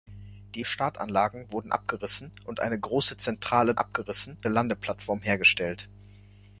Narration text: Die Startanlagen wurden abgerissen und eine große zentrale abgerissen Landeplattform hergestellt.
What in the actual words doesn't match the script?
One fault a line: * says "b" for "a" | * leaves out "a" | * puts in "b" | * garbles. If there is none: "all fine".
all fine